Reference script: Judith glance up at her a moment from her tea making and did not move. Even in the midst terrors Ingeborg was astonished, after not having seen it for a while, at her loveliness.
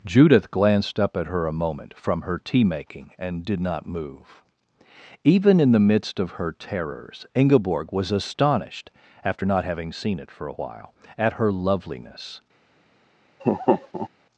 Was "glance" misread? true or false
true